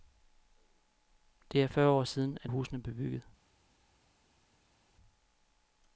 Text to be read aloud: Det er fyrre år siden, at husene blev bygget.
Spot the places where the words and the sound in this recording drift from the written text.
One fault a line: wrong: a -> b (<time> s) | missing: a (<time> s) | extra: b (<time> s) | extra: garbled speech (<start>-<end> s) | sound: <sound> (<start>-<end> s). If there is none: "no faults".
no faults